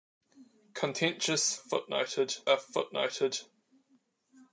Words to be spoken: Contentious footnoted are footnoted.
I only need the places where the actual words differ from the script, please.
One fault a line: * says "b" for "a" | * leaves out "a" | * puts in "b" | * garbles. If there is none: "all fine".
all fine